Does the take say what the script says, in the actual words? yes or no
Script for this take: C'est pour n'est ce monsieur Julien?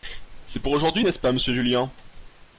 no